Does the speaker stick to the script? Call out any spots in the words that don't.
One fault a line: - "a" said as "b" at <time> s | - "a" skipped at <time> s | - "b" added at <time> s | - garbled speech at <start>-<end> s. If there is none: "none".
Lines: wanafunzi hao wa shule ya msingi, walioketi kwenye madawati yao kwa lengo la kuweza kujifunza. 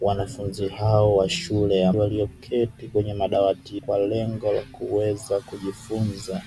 - "msingi" skipped at 1.9 s
- "yao" skipped at 3.8 s